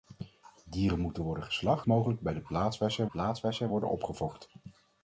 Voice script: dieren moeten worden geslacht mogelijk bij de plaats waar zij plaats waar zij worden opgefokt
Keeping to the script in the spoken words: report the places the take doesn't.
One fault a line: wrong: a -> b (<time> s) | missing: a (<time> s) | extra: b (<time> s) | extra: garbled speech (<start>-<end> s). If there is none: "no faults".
no faults